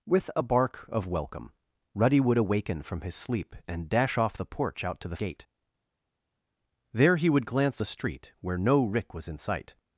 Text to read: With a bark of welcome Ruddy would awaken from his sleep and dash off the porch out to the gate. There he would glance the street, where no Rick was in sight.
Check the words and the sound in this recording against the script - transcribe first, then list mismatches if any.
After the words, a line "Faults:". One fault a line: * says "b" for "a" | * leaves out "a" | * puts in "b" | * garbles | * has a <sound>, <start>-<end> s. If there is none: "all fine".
With a bark of welcome Ruddy would awaken from his sleep and dash off the porch out to the gate. There he would glance the street, where no Rick was in sight.
Faults:
all fine